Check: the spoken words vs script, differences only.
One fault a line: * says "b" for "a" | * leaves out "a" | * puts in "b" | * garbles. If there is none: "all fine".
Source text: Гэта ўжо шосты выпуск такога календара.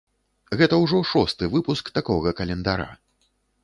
all fine